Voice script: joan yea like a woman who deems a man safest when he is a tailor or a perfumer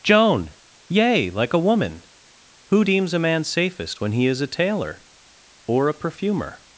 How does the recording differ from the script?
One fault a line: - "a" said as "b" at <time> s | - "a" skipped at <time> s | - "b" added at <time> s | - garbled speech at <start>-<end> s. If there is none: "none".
none